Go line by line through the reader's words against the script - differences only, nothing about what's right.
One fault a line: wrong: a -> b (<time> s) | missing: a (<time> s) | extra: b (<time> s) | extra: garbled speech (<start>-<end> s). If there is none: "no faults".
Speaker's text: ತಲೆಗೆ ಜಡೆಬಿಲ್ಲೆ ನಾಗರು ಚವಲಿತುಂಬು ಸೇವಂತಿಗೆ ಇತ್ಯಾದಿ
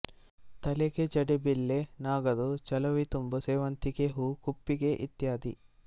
extra: ಹೂ ಕುಪ್ಪಿಗೆ (4.1 s)